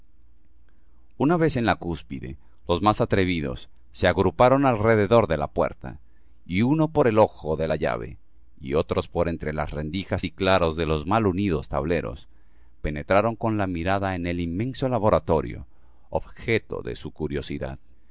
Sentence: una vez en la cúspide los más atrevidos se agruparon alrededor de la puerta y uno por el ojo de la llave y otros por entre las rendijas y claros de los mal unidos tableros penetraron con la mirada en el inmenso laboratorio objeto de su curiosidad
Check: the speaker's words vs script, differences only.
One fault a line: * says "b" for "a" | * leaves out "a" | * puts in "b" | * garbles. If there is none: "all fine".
all fine